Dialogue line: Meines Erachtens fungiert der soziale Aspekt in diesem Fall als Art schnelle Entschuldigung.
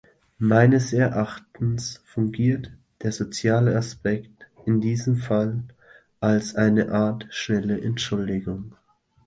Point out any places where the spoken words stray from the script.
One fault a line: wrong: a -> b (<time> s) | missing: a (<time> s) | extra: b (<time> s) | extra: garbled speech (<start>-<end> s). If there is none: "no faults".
extra: eine (6.5 s)